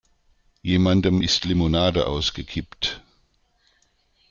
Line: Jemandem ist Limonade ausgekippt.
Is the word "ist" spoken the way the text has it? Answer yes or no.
yes